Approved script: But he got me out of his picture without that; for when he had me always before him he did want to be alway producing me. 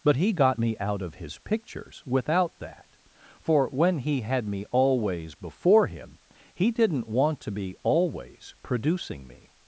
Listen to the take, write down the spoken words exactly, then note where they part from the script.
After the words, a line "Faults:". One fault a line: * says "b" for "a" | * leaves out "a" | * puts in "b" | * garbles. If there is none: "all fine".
But he got me out of his pictures without that; for when he had me always before him he didn't want to be always producing me.
Faults:
* says "pictures" for "picture"
* says "didn't" for "did"
* says "always" for "alway"